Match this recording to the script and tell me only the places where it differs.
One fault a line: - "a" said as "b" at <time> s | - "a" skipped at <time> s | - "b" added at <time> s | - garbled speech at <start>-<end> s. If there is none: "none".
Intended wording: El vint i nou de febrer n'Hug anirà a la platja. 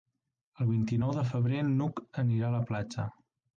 none